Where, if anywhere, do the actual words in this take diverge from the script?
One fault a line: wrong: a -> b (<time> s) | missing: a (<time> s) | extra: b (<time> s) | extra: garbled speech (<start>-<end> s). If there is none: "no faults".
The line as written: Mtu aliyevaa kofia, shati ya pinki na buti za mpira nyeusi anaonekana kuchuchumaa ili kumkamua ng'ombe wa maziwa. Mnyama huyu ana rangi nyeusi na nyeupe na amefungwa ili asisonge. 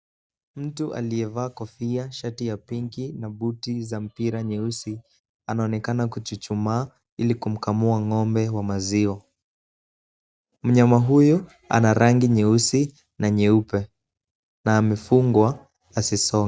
missing: ili (15.7 s)